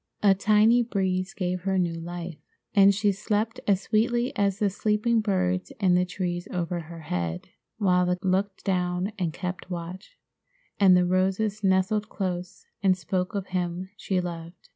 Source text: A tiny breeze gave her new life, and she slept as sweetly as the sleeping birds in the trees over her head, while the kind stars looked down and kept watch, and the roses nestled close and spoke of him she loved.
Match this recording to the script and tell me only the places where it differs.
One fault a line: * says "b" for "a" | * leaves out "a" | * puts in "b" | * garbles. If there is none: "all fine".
* leaves out "kind stars"